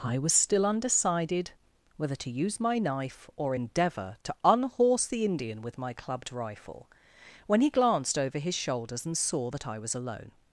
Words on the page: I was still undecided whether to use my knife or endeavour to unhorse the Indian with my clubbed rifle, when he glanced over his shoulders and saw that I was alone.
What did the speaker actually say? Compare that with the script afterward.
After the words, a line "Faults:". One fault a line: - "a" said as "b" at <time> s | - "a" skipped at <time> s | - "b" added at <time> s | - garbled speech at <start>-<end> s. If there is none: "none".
I was still undecided whether to use my knife or endeavour to unhorse the Indian with my clubbed rifle, when he glanced over his shoulders and saw that I was alone.
Faults:
none